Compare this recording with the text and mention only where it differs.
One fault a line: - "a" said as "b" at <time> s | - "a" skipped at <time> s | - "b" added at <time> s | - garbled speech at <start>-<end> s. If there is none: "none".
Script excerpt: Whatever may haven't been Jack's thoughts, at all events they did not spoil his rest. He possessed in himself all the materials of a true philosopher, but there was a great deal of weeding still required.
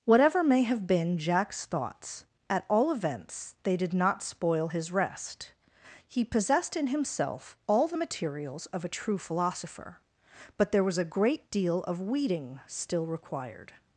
- "haven't" said as "have" at 0.6 s